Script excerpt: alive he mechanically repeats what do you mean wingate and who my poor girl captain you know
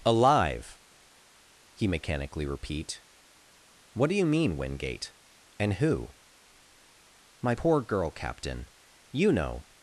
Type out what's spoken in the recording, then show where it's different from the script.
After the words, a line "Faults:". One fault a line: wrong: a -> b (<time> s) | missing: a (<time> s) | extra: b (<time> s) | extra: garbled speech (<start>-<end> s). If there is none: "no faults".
alive he mechanically repeat what do you mean wingate and who my poor girl captain you know
Faults:
wrong: repeats -> repeat (2.5 s)